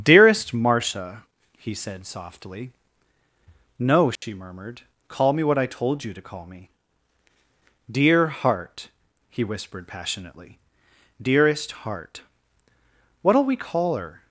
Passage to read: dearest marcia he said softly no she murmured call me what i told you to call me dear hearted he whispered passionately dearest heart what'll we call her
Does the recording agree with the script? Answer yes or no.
no